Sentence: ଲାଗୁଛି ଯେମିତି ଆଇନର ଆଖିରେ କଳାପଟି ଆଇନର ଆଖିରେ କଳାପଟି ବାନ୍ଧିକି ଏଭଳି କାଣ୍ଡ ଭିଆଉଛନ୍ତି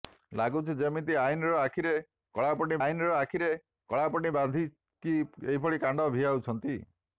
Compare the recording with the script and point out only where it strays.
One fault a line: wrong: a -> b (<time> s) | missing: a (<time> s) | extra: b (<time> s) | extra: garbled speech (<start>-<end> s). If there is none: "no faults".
no faults